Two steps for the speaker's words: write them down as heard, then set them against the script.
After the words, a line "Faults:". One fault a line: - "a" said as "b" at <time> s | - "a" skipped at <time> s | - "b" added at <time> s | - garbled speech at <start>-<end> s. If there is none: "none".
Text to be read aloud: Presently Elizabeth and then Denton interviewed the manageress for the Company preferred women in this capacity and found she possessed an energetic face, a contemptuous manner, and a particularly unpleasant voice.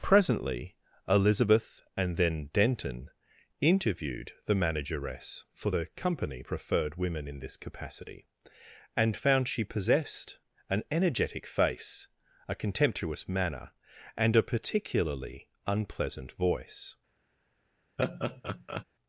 Presently Elizabeth and then Denton interviewed the manageress for the Company preferred women in this capacity and found she possessed an energetic face, a contemptuous manner, and a particularly unpleasant voice.
Faults:
none